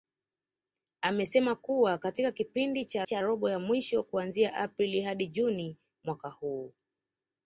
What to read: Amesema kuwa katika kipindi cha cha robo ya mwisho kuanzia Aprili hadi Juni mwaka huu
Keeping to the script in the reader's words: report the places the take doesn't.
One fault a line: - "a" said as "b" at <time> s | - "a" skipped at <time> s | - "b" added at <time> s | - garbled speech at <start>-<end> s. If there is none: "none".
none